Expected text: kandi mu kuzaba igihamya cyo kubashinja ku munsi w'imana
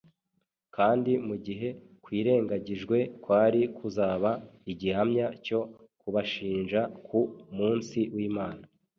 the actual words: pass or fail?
fail